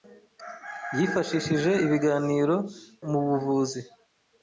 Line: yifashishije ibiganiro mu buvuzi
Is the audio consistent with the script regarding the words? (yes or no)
yes